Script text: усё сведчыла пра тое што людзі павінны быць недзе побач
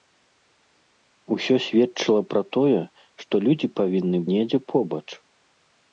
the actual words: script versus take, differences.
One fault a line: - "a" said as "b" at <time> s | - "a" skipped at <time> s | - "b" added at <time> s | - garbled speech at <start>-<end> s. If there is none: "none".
- "быць" skipped at 4.2 s